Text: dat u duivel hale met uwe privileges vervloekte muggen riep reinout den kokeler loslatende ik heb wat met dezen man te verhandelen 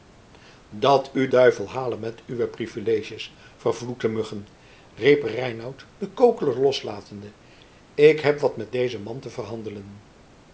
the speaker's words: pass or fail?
pass